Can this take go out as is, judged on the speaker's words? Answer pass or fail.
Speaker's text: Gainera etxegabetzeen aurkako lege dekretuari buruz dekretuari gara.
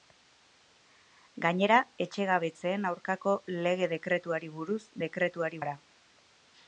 pass